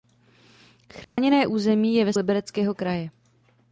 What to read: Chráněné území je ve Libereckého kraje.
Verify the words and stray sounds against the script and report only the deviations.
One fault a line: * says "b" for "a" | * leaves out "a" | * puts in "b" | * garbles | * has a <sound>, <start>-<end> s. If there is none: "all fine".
* has a dropout, 1.0-1.2 s